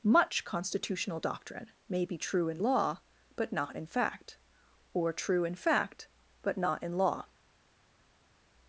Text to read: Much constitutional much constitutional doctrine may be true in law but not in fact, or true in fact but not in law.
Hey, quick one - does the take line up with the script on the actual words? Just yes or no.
no